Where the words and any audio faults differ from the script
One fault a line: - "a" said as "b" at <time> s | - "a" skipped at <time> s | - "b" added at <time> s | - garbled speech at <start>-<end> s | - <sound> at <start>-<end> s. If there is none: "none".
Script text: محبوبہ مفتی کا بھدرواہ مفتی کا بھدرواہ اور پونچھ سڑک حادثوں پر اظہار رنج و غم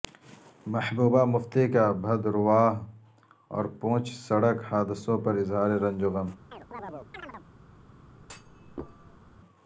- "مفتی کا بھدرواہ" skipped at 2.7 s
- chirp at 6.5-7.5 s
- thud at 8.2-9.4 s